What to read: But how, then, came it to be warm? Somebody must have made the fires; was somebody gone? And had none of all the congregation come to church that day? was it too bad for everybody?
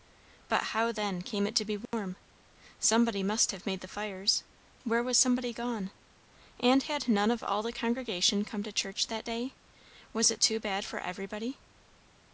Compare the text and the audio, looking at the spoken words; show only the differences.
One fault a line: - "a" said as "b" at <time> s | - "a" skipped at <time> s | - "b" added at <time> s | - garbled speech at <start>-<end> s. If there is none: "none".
- "where" added at 4.8 s